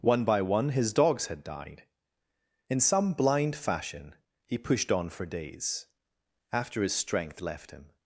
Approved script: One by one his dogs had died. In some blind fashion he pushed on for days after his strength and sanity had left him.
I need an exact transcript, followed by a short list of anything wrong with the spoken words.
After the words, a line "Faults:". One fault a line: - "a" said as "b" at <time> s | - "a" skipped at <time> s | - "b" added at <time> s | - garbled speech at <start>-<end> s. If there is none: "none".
One by one his dogs had died. In some blind fashion he pushed on for days after his strength left him.
Faults:
- "and sanity had" skipped at 7.4 s